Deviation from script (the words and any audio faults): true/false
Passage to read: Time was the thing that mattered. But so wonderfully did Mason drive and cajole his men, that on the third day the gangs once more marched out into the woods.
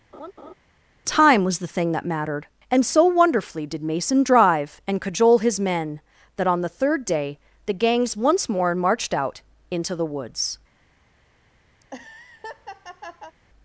true